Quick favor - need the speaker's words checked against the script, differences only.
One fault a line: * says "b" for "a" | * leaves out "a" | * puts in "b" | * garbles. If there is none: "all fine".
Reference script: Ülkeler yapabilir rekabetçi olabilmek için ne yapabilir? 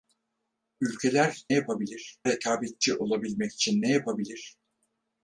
all fine